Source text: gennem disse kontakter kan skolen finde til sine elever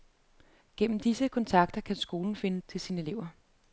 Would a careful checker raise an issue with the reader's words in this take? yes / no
no